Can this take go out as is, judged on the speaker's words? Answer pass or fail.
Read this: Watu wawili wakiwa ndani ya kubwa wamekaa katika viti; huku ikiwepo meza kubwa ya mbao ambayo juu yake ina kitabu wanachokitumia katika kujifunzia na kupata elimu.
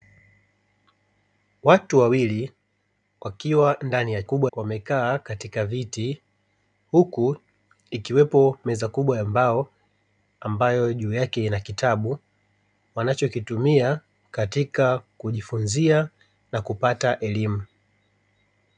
pass